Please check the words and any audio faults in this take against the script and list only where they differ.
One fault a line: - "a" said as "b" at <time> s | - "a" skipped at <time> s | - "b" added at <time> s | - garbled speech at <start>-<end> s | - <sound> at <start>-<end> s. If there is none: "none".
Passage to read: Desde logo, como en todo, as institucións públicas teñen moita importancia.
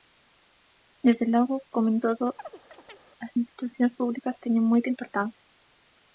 - chirp at 2.4-3.0 s